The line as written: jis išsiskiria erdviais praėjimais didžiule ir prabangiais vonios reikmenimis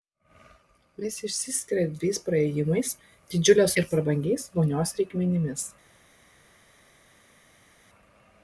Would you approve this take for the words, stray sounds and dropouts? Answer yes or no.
yes